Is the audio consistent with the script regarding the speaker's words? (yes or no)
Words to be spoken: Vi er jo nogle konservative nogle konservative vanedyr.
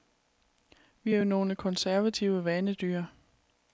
no